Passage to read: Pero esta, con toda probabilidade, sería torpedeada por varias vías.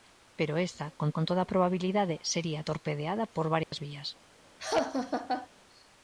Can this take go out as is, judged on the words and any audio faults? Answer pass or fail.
fail